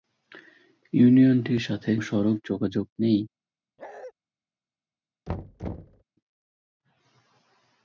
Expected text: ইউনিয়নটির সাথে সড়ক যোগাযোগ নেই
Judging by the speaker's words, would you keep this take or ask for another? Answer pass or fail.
pass